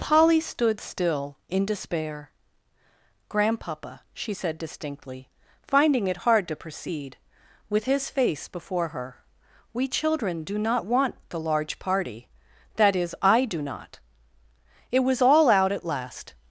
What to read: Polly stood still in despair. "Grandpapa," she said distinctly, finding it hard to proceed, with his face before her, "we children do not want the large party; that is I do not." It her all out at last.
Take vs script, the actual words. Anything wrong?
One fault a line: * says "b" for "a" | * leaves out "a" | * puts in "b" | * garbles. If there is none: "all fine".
* says "was" for "her"